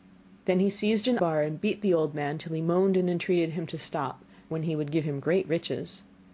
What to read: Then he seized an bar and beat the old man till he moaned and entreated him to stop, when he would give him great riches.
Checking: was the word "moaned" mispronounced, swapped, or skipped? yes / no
no